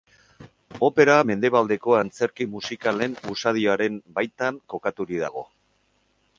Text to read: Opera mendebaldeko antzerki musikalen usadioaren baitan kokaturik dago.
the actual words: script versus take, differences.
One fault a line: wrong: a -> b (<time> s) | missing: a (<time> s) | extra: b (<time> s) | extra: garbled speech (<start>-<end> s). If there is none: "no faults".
no faults